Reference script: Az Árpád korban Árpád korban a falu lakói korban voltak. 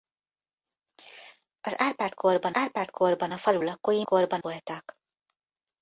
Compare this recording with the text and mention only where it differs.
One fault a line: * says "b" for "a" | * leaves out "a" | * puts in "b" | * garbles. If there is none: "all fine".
all fine